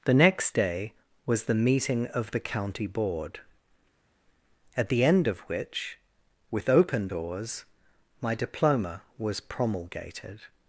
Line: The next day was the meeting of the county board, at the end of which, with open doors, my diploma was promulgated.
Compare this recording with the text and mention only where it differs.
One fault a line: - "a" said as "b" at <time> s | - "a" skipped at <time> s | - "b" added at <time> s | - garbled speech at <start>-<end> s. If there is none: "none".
none